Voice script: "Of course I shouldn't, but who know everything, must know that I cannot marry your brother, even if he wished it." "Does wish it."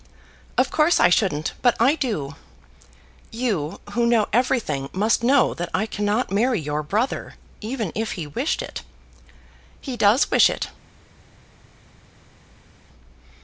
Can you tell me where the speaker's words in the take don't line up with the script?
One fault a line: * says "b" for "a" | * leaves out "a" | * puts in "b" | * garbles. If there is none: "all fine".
* puts in "I do You"
* puts in "He"